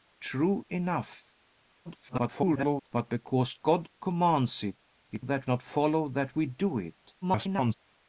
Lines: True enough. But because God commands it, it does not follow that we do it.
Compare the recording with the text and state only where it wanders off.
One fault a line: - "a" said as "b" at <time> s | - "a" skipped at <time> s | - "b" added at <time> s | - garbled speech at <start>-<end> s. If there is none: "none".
- garbled speech at 1.8-2.9 s
- "does" said as "that" at 5.2 s
- garbled speech at 7.2-7.7 s